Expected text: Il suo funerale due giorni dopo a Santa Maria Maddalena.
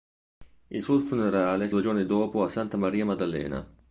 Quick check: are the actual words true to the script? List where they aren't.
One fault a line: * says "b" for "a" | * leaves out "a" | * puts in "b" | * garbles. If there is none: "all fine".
all fine